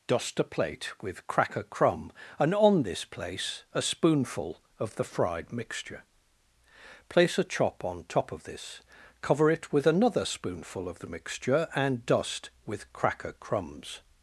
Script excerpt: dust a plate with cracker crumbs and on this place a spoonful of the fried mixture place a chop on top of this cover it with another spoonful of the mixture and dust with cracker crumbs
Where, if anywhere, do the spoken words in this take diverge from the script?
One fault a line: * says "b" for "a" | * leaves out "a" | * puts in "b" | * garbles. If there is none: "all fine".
* says "crumb" for "crumbs"